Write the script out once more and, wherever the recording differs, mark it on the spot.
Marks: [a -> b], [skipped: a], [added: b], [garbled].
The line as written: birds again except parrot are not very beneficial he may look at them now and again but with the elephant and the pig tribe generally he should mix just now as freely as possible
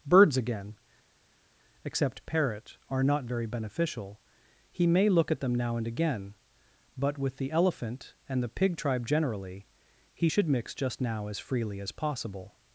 birds again except parrot are not very beneficial he may look at them now and again but with the elephant and the pig tribe generally he should mix just now as freely as possible